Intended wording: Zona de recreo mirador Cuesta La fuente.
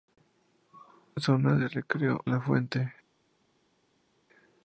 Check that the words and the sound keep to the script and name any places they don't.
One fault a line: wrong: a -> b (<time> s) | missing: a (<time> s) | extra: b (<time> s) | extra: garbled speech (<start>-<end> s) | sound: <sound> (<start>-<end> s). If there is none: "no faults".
missing: mirador Cuesta (2.2 s)